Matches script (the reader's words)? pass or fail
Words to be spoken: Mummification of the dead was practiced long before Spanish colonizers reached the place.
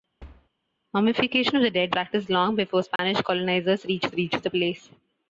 fail